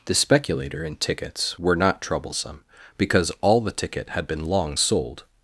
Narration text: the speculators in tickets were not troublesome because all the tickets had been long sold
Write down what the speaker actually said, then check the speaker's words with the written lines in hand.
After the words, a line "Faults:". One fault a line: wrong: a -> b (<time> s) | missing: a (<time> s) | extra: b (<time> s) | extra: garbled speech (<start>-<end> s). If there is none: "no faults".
the speculator in tickets were not troublesome because all the ticket had been long sold
Faults:
wrong: speculators -> speculator (0.1 s)
wrong: tickets -> ticket (3.7 s)